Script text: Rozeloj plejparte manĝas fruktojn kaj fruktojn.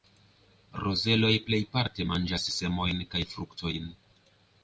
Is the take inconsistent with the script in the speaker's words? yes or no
yes